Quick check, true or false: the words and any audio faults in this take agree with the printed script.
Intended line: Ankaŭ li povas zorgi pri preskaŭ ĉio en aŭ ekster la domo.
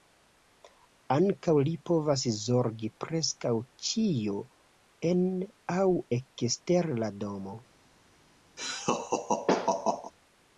false